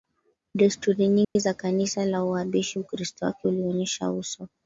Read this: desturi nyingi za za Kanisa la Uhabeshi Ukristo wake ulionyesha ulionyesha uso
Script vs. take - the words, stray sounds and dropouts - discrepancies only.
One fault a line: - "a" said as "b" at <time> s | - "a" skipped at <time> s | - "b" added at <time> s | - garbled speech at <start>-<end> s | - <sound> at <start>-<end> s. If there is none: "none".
- dropout at 1.2-1.4 s
- "za" skipped at 1.5 s
- "ulionyesha" skipped at 4.1 s